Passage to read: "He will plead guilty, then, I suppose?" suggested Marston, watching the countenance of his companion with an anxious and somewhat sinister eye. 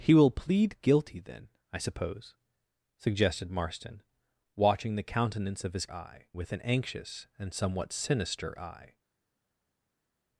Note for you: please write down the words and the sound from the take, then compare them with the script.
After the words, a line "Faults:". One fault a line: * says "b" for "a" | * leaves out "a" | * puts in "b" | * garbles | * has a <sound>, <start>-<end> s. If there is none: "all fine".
"He will plead guilty, then, I suppose?" suggested Marston, watching the countenance of his eye with an anxious and somewhat sinister eye.
Faults:
* says "eye" for "companion"